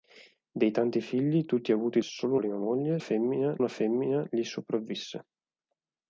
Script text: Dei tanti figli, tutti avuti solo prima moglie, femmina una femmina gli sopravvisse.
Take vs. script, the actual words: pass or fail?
pass